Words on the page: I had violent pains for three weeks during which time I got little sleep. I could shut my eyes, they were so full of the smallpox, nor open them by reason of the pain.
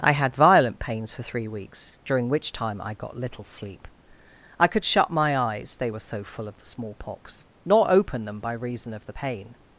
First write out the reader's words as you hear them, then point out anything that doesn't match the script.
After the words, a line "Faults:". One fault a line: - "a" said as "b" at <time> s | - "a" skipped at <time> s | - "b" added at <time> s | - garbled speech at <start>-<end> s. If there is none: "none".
I had violent pains for three weeks during which time I got little sleep. I could shut my eyes, they were so full of the smallpox, nor open them by reason of the pain.
Faults:
none